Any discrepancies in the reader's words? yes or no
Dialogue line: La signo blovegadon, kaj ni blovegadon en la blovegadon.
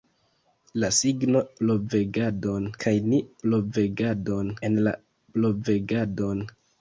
no